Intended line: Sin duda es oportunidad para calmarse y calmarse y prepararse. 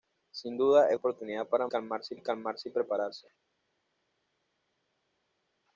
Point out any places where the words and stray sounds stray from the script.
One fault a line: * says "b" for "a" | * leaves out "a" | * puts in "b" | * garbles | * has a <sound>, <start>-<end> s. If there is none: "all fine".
all fine